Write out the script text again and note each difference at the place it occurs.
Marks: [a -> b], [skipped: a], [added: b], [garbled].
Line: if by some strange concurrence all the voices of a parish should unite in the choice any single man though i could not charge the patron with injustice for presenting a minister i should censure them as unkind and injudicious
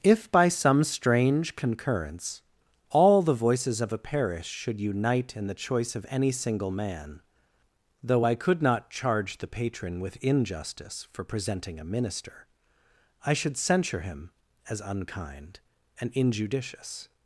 if by some strange concurrence all the voices of a parish should unite in the choice [added: of] any single man though i could not charge the patron with injustice for presenting a minister i should censure [them -> him] as unkind and injudicious